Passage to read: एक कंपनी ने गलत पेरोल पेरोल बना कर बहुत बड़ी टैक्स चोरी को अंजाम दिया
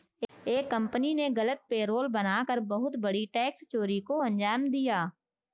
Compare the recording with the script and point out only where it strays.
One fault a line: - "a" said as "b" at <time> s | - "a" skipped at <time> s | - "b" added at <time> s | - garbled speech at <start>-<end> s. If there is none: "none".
- "पेरोल" skipped at 2.1 s